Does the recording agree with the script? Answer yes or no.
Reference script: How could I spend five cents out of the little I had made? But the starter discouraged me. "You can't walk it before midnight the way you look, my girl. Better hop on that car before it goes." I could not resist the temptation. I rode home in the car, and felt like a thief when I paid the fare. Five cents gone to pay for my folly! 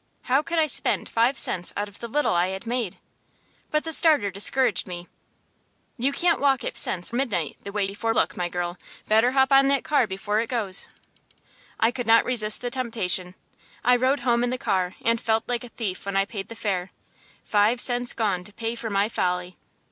no